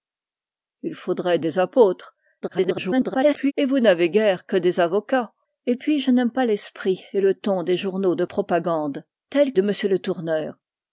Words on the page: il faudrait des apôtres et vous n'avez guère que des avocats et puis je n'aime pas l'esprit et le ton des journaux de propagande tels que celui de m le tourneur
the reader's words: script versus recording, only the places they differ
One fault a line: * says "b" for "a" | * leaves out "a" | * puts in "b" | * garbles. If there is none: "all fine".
* garbles
* leaves out "que celui"